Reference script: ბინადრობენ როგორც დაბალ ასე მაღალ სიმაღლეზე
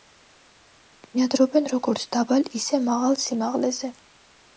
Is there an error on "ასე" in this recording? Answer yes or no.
yes